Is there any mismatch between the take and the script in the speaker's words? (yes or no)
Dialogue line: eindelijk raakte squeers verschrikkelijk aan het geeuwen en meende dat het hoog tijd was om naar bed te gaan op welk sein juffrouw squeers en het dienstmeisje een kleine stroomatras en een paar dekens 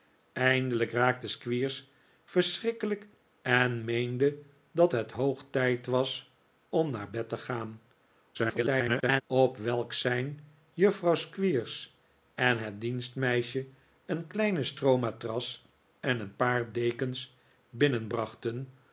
yes